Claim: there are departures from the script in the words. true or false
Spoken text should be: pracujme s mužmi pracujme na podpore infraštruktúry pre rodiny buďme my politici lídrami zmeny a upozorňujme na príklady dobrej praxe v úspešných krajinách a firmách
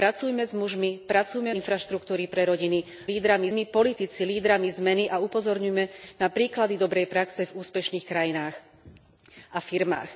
true